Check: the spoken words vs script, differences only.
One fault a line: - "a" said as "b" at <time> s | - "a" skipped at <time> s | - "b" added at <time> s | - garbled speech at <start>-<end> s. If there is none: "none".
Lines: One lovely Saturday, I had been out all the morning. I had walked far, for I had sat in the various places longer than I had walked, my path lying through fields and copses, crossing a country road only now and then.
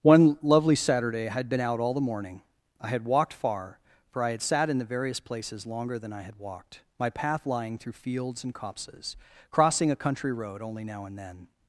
none